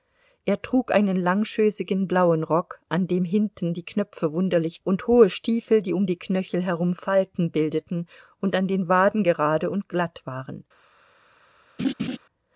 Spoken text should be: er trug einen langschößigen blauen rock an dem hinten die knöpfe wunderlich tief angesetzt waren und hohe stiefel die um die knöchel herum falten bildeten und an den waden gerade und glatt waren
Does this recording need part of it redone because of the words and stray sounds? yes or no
yes